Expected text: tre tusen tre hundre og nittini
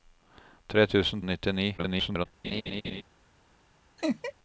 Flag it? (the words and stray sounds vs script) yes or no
yes